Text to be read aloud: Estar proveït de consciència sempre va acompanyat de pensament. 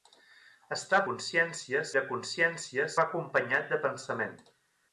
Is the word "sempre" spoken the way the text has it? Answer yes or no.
no